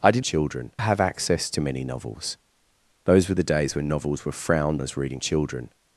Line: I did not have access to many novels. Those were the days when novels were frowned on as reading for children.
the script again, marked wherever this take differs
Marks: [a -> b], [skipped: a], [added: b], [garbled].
I did [not -> children] have access to many novels. Those were the days when novels were frowned [skipped: on] as reading [skipped: for] children.